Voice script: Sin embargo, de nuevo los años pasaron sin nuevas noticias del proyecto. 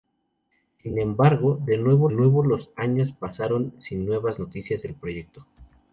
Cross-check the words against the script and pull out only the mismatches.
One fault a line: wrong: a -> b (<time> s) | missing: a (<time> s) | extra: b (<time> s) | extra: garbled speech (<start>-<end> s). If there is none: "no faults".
extra: nuevo (2.1 s)